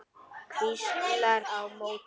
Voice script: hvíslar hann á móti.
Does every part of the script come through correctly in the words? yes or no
no